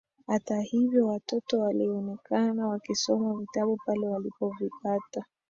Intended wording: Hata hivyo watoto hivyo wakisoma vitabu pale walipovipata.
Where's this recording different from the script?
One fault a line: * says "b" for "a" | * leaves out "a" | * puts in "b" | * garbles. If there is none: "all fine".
* says "walionekana" for "hivyo"